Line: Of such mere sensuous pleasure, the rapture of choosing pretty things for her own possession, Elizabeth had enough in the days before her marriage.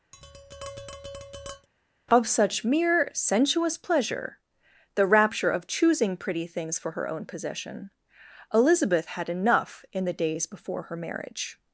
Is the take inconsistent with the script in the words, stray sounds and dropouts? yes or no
yes